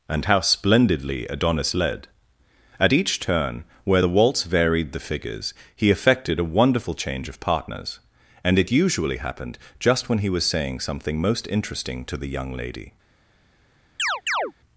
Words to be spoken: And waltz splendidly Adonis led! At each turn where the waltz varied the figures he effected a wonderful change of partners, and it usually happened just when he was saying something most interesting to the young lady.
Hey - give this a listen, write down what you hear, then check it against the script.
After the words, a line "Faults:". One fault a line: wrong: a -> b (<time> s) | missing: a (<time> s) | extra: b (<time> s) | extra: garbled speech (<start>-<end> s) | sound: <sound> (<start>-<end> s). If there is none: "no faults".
And how splendidly Adonis led! At each turn where the waltz varied the figures he effected a wonderful change of partners, and it usually happened just when he was saying something most interesting to the young lady.
Faults:
wrong: waltz -> how (0.2 s)
sound: chirp (14.0-14.5 s)